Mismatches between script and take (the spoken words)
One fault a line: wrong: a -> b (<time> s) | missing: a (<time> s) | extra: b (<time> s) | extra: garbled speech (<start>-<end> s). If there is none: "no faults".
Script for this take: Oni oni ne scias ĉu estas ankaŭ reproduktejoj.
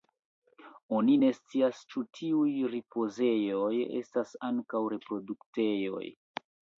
missing: oni (1.2 s)
extra: tiuj ripozejoj (2.2 s)